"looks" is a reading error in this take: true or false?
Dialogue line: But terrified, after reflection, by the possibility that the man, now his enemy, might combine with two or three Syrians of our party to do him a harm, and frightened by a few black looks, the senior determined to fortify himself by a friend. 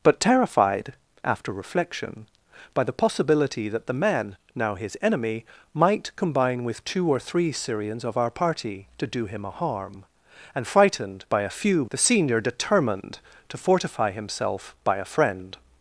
true